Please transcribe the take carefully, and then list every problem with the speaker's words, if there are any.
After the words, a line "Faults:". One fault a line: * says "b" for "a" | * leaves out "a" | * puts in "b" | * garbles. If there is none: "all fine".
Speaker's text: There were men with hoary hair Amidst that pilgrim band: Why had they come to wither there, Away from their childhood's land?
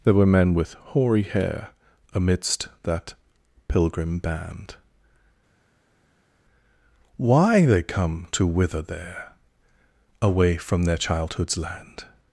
There were men with hoary hair Amidst that pilgrim band: Why they come to wither there, Away from their childhood's land?
Faults:
* leaves out "had"